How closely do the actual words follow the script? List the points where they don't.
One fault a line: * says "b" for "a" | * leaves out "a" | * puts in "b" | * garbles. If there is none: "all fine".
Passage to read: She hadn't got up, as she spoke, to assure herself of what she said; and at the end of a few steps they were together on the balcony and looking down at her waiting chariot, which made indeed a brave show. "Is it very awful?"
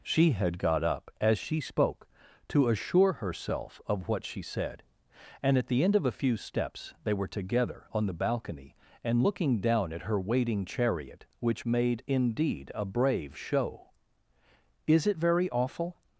* says "had" for "hadn't"